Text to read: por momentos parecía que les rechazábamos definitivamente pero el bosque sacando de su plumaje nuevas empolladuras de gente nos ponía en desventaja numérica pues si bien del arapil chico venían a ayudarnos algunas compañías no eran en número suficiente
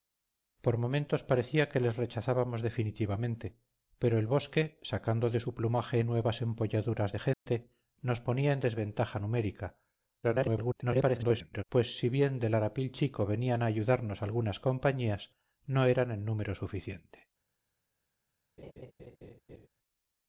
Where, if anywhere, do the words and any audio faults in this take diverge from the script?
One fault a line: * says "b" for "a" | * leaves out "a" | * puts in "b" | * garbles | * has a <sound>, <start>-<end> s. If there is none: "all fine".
* has a dropout, 7.3-7.5 s
* garbles
* has a laugh, 18.6-19.7 s